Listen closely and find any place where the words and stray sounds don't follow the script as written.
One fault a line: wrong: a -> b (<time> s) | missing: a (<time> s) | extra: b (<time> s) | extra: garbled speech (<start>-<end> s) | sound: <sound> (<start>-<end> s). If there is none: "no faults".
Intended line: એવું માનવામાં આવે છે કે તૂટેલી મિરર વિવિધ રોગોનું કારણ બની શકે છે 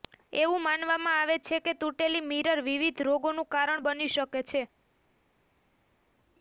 no faults